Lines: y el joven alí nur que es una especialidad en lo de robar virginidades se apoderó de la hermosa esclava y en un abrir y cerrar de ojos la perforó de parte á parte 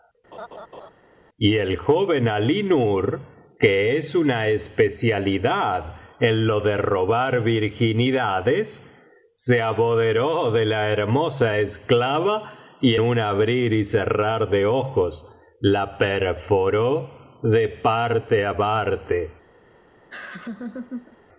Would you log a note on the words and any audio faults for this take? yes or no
yes